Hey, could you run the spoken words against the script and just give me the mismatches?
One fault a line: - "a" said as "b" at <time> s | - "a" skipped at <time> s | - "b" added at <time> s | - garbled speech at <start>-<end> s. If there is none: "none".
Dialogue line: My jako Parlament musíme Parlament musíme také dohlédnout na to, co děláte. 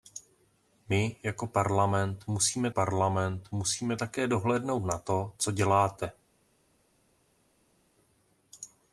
none